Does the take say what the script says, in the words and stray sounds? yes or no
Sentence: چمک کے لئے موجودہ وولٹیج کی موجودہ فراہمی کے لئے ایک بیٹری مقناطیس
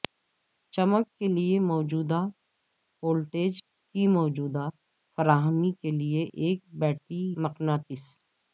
yes